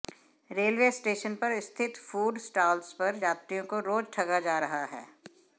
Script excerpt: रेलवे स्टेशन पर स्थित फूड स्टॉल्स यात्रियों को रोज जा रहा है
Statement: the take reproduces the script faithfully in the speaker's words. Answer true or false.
false